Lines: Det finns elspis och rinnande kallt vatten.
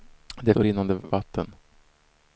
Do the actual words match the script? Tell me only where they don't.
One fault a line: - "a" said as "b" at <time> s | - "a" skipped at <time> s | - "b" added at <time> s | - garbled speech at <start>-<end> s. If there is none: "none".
- "finns elspis" skipped at 0.5 s
- "kallt" skipped at 1.0 s